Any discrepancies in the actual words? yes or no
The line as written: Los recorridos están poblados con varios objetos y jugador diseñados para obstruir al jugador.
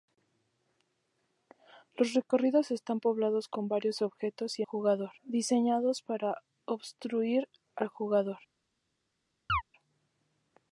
no